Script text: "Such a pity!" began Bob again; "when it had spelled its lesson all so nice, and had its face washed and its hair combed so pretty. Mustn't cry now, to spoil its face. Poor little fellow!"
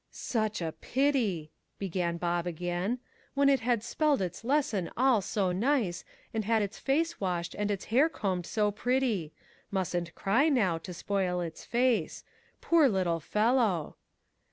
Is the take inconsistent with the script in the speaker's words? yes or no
no